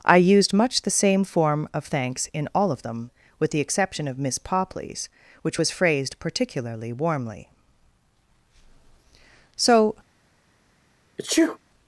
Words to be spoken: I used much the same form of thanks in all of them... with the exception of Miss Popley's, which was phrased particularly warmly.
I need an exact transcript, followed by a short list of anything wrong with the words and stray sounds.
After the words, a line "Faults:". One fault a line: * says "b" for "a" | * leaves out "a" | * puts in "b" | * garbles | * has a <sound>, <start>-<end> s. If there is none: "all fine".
I used much the same form of thanks in all of them... with the exception of Miss Popley's, which was phrased particularly warmly. So
Faults:
* puts in "So"
* has a sneeze, 11.2-11.6 s